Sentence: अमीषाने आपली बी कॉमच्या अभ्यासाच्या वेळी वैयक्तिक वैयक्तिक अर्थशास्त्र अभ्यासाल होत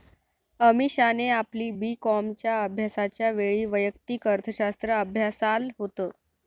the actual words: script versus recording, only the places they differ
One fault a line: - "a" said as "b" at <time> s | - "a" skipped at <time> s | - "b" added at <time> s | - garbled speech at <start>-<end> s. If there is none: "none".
- "वैयक्तिक" skipped at 4.3 s